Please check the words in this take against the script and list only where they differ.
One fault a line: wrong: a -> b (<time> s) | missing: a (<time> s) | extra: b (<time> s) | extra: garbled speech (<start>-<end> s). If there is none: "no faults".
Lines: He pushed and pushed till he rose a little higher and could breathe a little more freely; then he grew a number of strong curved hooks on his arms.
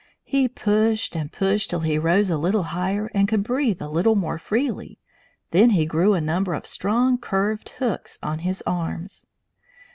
no faults